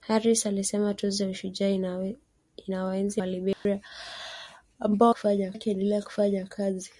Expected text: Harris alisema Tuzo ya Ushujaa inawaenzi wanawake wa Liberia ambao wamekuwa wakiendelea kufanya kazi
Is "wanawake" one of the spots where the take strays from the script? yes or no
yes